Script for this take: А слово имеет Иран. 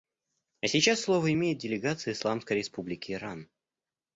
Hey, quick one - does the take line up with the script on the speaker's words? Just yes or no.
no